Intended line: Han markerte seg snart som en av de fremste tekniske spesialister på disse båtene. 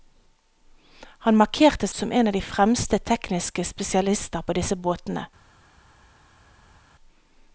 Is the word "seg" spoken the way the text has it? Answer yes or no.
no